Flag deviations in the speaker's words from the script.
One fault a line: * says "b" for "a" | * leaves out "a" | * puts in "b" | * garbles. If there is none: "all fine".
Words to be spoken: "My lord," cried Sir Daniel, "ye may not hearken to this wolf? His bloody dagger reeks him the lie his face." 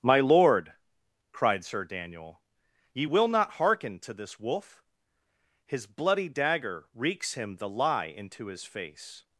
* says "will" for "may"
* puts in "into"